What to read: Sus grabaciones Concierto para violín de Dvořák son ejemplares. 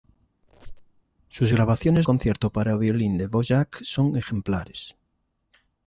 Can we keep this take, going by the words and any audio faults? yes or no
no